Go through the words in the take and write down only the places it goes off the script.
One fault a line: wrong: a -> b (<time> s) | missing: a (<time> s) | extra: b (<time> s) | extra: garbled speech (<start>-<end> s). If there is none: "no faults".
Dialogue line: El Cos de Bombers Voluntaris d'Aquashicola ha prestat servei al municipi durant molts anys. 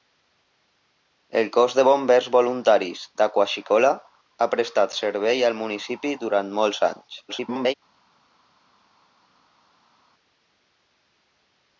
extra: garbled speech (7.3-7.7 s)